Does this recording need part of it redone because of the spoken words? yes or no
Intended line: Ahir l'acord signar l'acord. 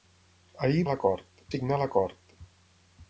no